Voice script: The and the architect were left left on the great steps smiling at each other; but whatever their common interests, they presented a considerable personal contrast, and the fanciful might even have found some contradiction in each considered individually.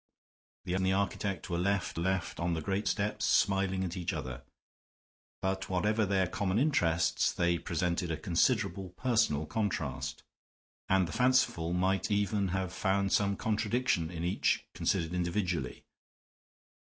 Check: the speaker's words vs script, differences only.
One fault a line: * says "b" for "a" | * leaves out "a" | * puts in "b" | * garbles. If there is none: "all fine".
all fine